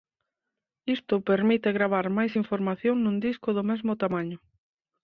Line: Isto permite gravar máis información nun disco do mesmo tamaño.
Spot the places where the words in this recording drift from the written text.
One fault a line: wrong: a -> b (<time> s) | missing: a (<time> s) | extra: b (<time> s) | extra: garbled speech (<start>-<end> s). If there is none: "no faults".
no faults